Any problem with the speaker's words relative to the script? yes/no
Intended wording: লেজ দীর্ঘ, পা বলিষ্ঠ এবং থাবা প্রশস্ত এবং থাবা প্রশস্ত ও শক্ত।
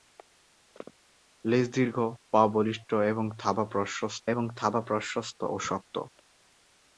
no